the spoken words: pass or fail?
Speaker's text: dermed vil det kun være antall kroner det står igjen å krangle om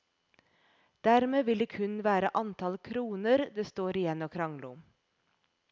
pass